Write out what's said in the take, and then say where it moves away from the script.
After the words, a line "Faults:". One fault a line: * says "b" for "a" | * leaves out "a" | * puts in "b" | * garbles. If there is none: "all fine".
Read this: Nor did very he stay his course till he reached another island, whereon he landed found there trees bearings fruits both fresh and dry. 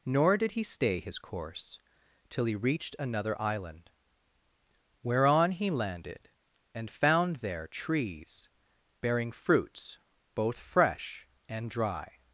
Nor did he stay his course till he reached another island, whereon he landed and found there trees bearing fruits both fresh and dry.
Faults:
* leaves out "very"
* puts in "and"
* says "bearing" for "bearings"